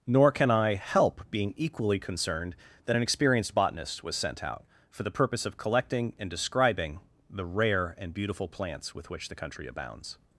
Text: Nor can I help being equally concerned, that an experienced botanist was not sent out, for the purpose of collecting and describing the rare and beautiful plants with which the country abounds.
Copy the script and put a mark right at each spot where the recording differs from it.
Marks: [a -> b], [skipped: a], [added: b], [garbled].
Nor can I help being equally concerned, that an experienced botanist was [skipped: not] sent out, for the purpose of collecting and describing the rare and beautiful plants with which the country abounds.